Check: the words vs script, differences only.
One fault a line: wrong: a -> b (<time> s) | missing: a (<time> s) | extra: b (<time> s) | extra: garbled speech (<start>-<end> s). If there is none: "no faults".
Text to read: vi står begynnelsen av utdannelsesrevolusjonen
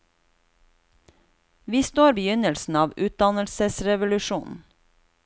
no faults